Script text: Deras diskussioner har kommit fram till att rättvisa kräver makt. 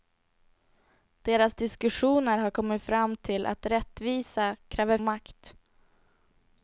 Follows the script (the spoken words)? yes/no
yes